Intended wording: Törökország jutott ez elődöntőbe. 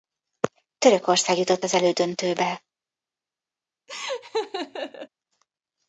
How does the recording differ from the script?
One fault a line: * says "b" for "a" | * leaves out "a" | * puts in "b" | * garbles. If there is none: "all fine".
* says "az" for "ez"